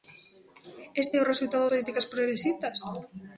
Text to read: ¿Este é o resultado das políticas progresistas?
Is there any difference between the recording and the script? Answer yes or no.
yes